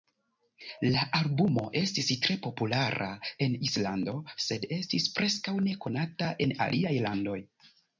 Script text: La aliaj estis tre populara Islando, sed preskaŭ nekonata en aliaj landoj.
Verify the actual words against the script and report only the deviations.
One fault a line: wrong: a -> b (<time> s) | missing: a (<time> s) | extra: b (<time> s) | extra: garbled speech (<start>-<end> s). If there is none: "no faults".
wrong: aliaj -> albumo (1.2 s)
extra: en (3.5 s)
extra: estis (4.8 s)